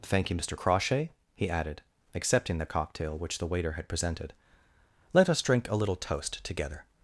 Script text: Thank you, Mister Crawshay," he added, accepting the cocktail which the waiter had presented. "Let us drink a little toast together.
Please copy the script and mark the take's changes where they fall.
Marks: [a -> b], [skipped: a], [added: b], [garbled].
Thank you, Mister Crawshay," he added, accepting the cocktail which the waiter had presented. "Let us drink a little toast together.